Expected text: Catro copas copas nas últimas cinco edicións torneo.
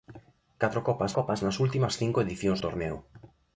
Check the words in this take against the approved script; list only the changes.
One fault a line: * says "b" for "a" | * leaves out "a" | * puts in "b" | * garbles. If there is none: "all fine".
all fine